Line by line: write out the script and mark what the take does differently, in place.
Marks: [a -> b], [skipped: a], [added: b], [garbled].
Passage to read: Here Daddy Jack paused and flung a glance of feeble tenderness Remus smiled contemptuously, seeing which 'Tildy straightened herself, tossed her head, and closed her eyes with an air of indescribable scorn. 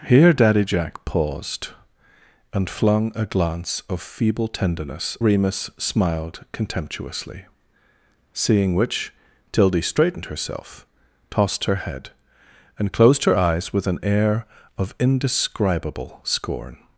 Here Daddy Jack paused and flung a glance of feeble tenderness Remus smiled contemptuously, seeing which 'Tildy straightened herself, tossed her head, and closed her eyes with an air of indescribable scorn.